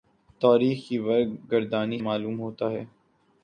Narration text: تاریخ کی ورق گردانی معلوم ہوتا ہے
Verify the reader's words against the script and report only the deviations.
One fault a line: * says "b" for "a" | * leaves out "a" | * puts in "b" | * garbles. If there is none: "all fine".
all fine